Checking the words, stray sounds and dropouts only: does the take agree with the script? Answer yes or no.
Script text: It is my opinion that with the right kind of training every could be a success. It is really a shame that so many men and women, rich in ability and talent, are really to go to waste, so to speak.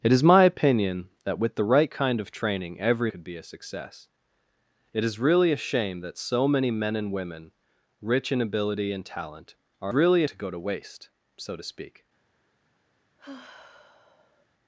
no